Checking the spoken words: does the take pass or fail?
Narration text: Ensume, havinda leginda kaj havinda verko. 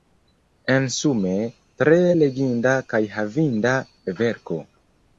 fail